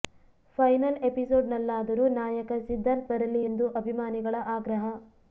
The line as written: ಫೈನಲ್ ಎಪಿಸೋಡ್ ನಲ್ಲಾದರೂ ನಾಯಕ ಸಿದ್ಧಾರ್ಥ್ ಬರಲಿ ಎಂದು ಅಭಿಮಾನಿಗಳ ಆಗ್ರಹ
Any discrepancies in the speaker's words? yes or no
no